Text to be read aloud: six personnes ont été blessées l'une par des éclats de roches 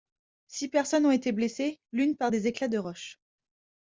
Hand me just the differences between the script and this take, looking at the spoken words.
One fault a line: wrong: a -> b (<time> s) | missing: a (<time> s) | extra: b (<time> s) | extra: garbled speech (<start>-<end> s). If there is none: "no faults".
no faults